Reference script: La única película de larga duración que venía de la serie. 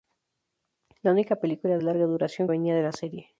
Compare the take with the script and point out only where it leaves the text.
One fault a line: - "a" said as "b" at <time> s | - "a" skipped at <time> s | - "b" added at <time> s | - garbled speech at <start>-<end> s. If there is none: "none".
- "que" skipped at 2.5 s